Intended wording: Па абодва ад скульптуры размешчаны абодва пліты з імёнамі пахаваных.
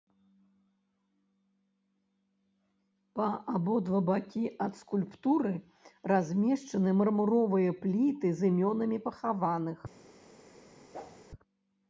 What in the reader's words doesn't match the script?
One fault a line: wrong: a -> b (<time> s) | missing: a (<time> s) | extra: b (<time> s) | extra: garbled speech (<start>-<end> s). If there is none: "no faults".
extra: бакі (4.1 s)
wrong: абодва -> мармуровыя (7.0 s)